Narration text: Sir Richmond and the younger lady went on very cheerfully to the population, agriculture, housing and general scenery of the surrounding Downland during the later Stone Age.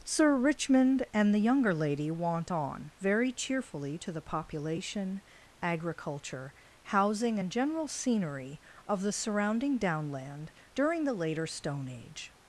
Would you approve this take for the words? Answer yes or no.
no